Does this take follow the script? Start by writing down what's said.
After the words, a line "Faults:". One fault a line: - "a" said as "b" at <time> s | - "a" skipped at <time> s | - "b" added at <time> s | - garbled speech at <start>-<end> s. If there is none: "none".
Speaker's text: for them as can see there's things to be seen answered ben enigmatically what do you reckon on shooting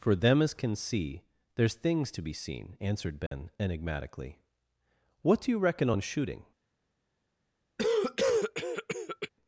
for them as can see there's things to be seen answered ben enigmatically what do you reckon on shooting
Faults:
none